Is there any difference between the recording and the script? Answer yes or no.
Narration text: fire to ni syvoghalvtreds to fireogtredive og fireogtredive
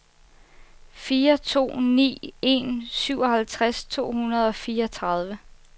yes